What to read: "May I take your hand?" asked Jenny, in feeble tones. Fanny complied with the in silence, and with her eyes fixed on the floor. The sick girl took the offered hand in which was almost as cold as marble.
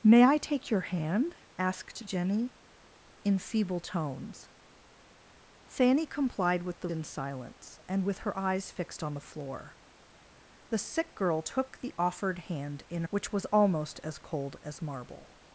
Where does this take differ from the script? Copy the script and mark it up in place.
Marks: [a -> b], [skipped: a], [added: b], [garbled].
"May I take your hand?" asked Jenny, in feeble tones. Fanny complied with the in silence, and with her eyes fixed on the floor. The sick girl took the offered hand in which was almost as cold as marble.